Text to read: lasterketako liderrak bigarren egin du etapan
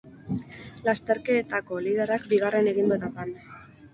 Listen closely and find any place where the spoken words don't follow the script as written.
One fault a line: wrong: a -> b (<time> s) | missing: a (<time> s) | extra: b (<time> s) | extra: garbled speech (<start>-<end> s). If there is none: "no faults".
no faults